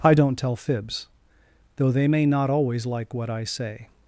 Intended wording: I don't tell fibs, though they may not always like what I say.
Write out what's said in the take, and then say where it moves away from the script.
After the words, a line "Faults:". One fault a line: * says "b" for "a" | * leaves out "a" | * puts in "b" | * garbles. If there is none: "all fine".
I don't tell fibs, though they may not always like what I say.
Faults:
all fine